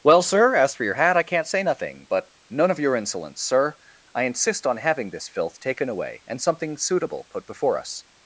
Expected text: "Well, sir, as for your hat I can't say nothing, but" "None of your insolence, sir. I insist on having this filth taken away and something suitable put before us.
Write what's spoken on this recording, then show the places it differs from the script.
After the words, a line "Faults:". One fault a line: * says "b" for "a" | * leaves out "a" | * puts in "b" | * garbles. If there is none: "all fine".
"Well, sir, as for your hat I can't say nothing, but" "None of your insolence, sir. I insist on having this filth taken away and something suitable put before us.
Faults:
all fine